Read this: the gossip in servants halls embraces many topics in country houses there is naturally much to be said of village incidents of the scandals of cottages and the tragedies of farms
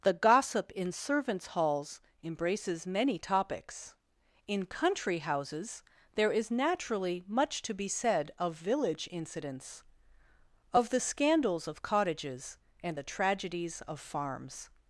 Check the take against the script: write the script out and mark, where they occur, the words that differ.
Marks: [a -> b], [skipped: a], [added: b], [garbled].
the gossip in servants halls embraces many topics in country houses there is naturally much to be said of village incidents of the scandals of cottages and the tragedies of farms